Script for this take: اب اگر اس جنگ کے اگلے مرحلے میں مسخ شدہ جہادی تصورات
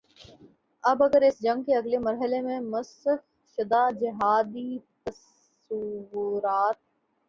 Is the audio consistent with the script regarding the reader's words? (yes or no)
yes